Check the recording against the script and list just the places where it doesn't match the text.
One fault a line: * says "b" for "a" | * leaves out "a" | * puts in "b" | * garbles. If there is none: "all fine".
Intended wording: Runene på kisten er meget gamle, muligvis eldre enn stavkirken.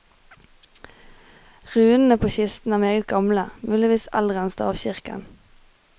all fine